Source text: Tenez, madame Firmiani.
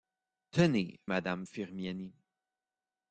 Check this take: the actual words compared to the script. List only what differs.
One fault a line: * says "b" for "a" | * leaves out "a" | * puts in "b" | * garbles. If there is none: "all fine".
all fine